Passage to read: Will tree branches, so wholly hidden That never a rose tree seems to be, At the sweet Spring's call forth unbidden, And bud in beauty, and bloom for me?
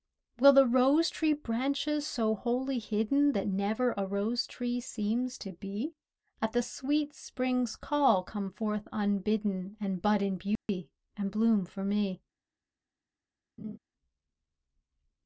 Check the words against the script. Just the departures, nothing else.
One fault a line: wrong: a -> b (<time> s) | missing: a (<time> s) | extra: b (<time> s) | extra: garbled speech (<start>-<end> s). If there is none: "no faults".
extra: the rose (0.5 s)
extra: come (8.2 s)